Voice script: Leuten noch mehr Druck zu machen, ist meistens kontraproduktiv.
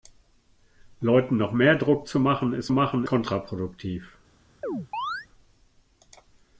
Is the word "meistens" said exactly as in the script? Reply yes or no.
no